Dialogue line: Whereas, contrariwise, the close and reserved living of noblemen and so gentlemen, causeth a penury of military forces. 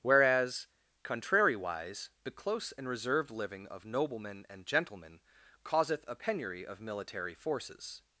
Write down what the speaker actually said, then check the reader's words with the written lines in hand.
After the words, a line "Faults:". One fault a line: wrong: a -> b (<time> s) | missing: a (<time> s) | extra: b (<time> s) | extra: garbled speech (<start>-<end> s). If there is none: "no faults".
Whereas, contrariwise, the close and reserved living of noblemen and gentlemen, causeth a penury of military forces.
Faults:
missing: so (4.7 s)